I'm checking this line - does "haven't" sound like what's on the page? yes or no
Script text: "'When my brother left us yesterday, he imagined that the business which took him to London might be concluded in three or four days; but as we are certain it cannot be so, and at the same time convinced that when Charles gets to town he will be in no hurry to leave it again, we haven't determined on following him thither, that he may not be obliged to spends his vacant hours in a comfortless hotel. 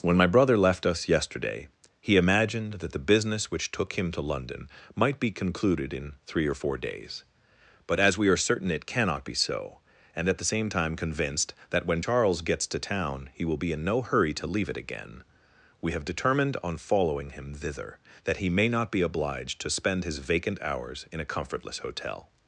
no